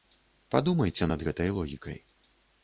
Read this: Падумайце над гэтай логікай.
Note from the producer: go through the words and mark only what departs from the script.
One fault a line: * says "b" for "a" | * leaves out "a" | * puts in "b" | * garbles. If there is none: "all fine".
all fine